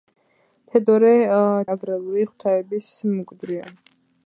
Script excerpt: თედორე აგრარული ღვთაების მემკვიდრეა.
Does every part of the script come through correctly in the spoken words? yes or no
yes